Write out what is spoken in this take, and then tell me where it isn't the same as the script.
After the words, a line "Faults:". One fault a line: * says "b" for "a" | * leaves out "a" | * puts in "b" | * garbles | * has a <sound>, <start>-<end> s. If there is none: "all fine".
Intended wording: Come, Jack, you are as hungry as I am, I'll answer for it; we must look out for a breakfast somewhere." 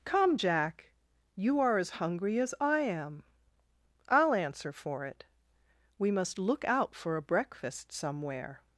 Come, Jack, you are as hungry as I am, I'll answer for it; we must look out for a breakfast somewhere."
Faults:
all fine